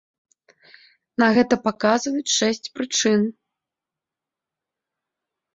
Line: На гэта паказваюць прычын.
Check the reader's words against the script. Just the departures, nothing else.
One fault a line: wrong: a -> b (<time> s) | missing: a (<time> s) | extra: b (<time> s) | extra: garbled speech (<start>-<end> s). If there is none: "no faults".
extra: шэсць (2.4 s)